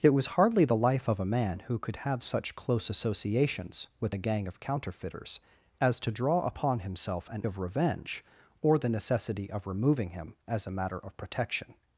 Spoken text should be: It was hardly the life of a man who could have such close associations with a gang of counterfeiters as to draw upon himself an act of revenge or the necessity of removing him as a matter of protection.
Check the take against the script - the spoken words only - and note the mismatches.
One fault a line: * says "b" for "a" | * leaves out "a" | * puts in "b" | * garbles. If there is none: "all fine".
* leaves out "act"